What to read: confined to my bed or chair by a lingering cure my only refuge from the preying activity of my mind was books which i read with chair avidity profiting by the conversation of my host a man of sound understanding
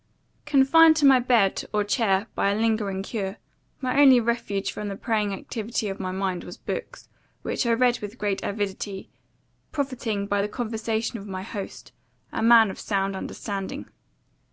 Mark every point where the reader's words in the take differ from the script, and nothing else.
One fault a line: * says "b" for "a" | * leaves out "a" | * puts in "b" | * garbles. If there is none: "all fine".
* says "great" for "chair"